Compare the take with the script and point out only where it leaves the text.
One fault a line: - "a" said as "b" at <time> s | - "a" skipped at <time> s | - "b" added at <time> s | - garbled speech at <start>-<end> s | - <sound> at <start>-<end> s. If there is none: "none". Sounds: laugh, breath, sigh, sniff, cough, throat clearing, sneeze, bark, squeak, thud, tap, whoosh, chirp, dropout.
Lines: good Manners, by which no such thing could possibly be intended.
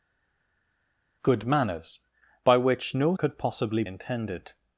- "such thing" skipped at 3.1 s
- "be" skipped at 3.8 s